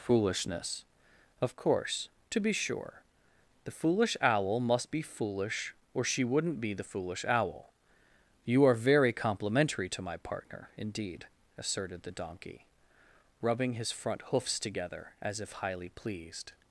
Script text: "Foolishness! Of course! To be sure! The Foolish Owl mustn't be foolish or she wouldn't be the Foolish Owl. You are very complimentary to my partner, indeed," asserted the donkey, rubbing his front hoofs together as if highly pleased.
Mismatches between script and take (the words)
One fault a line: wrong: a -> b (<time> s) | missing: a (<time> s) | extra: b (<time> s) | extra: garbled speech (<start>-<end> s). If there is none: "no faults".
wrong: mustn't -> must (4.6 s)